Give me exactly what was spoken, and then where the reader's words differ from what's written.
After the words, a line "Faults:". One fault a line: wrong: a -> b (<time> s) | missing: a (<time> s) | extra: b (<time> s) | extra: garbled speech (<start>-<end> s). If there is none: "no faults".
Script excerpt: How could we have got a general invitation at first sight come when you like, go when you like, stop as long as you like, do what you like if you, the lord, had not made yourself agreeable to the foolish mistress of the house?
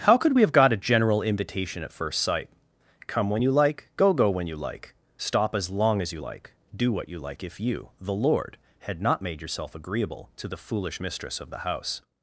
How could we have got a general invitation at first sight come when you like, go go when you like, stop as long as you like, do what you like if you, the lord, had not made yourself agreeable to the foolish mistress of the house?
Faults:
extra: go (4.1 s)